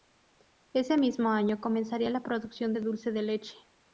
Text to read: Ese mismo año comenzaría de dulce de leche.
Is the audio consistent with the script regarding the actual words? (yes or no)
no